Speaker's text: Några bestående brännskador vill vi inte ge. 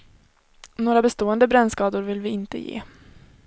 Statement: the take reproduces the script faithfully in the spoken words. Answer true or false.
true